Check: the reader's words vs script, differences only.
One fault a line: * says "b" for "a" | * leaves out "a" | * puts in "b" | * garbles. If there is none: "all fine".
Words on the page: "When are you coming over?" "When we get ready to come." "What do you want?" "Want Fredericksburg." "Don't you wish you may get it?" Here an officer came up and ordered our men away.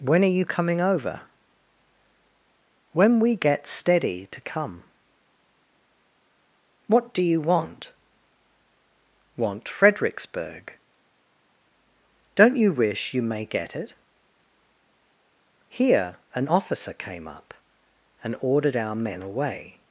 * says "steady" for "ready"